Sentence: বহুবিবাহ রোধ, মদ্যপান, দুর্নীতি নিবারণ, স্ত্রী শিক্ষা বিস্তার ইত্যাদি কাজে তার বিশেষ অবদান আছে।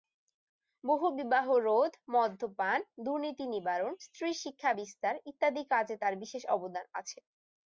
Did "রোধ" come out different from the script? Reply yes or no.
no